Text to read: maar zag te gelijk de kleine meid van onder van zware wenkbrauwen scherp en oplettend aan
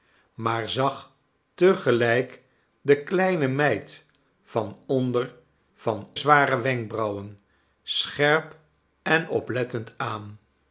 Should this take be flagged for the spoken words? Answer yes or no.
no